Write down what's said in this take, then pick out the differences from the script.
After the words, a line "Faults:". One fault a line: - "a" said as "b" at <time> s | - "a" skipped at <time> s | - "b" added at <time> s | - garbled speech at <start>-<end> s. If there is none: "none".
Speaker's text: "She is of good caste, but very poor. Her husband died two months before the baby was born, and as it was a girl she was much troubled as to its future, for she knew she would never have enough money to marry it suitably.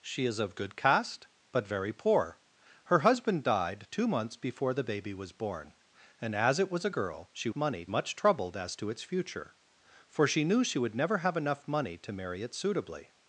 "She is of good caste, but very poor. Her husband died two months before the baby was born, and as it was a girl she money much troubled as to its future, for she knew she would never have enough money to marry it suitably.
Faults:
- "was" said as "money" at 7.5 s